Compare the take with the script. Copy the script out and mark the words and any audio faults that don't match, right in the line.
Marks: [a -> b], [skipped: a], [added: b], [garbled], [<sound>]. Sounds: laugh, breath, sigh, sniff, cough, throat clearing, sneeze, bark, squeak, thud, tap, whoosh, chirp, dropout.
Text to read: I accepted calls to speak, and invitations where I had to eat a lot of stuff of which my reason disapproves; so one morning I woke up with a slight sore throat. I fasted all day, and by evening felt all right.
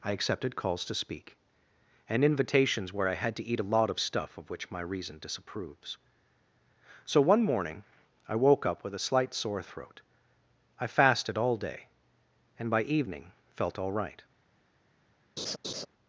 I accepted calls to speak, and invitations where I had to eat a lot of stuff of which my reason disapproves; so one morning I woke up with a slight sore throat. I fasted all day, and by evening felt all right. [laugh]